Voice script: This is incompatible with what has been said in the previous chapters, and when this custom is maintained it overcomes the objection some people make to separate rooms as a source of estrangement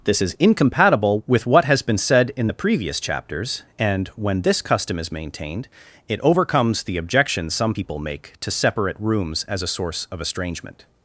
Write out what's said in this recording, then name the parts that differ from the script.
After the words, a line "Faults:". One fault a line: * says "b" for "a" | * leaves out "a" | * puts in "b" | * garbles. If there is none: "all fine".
This is incompatible with what has been said in the previous chapters, and when this custom is maintained it overcomes the objection some people make to separate rooms as a source of estrangement
Faults:
all fine